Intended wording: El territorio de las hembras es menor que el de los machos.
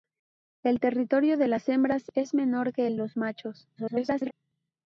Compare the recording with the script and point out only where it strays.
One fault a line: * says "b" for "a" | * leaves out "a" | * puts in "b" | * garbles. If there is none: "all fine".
* leaves out "de"
* garbles